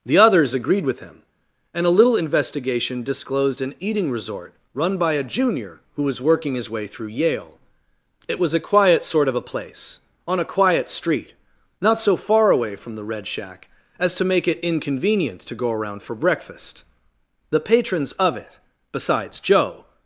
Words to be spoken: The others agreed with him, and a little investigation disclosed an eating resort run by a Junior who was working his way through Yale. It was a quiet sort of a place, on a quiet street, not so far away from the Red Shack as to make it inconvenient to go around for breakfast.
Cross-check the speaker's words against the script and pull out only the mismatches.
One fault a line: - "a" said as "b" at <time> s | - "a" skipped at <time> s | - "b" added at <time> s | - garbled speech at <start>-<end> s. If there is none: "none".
- "The patrons of it besides Joe" added at 17.5 s